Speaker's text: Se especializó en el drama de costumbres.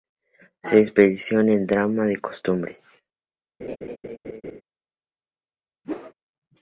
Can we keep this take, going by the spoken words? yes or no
yes